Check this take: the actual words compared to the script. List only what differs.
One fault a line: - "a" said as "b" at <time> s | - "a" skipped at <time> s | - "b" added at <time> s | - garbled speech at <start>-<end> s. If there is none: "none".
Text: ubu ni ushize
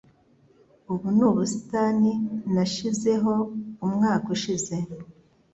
- "ubusitani nashizeho umwaka" added at 1.3 s